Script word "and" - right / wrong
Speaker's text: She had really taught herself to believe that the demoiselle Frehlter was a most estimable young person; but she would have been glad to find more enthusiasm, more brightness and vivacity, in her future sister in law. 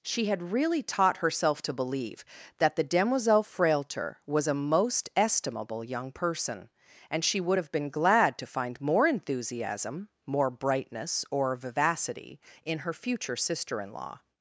wrong